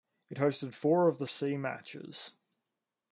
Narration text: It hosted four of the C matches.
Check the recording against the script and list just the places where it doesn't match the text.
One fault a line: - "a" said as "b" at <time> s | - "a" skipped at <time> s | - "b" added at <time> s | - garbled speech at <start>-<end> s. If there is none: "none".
none